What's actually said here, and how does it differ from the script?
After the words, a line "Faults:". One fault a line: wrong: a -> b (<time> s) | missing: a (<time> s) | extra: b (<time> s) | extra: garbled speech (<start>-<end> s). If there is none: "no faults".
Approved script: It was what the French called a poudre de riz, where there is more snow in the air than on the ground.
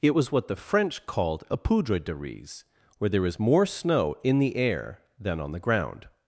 It was what the French called a poudre de riz, where there is more snow in the air than on the ground.
Faults:
no faults